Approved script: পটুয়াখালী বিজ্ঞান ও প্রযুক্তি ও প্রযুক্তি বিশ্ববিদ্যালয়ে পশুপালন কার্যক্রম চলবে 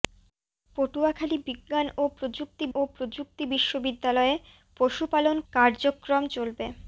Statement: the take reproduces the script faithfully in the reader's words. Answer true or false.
true